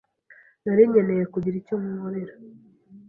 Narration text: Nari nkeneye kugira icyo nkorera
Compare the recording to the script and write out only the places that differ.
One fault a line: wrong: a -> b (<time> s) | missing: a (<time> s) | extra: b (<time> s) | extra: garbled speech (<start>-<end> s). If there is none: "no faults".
no faults